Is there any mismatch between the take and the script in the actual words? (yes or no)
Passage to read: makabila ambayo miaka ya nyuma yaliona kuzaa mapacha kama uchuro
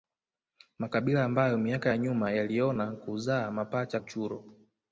yes